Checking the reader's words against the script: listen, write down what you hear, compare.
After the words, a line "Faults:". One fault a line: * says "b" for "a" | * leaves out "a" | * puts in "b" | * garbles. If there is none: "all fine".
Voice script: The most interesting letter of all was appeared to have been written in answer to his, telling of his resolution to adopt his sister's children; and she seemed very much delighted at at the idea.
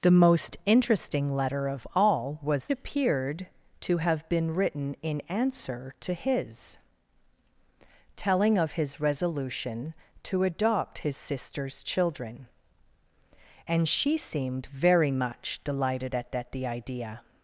The most interesting letter of all was appeared to have been written in answer to his, telling of his resolution to adopt his sister's children; and she seemed very much delighted at at the idea.
Faults:
all fine